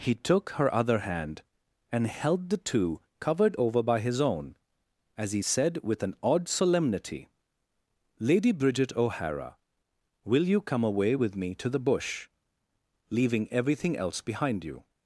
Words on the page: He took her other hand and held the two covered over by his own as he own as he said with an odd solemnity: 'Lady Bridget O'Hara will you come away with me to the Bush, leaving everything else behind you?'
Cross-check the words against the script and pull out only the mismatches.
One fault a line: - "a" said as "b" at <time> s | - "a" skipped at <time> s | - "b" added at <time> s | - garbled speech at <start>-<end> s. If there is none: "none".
- "own as he" skipped at 5.4 s